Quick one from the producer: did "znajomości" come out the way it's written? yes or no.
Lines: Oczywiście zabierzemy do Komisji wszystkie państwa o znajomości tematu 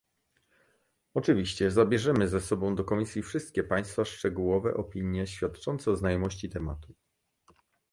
yes